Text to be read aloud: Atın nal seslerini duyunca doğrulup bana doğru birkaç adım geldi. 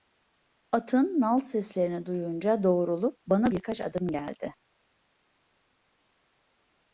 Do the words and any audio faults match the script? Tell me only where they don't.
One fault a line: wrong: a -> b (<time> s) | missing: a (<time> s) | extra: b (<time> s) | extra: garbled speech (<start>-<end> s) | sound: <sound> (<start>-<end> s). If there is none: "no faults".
missing: doğru (3.5 s)